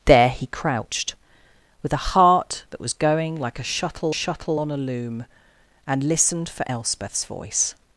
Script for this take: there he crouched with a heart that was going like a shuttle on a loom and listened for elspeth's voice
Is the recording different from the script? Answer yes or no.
yes